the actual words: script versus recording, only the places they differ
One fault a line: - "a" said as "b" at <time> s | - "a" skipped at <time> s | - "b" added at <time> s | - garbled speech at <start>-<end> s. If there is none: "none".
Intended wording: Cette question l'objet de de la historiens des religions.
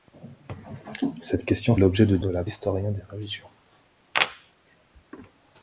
none